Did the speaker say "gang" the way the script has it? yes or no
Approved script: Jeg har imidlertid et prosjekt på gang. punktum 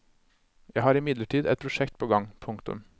yes